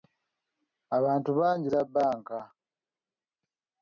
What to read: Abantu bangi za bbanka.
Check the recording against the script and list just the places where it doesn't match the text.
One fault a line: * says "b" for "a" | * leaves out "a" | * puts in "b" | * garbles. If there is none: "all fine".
all fine